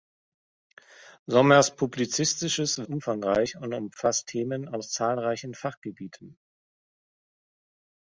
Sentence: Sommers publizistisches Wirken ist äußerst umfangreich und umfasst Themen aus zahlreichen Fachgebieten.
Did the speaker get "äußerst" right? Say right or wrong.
wrong